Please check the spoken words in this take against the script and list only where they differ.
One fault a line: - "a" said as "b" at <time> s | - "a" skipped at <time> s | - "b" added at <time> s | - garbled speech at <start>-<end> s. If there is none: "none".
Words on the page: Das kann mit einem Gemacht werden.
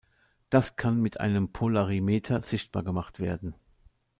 - "Polarimeter sichtbar" added at 1.5 s